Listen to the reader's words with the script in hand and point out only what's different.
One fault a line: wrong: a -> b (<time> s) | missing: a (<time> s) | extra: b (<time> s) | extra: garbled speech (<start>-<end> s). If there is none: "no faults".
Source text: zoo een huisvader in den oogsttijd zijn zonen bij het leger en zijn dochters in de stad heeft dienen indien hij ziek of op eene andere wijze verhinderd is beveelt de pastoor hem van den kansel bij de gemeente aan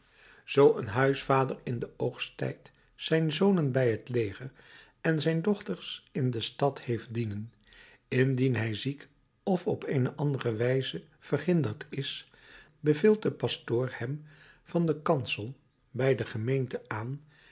no faults